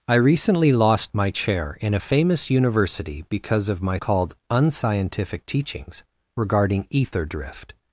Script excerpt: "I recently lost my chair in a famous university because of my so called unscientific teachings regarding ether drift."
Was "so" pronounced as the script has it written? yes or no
no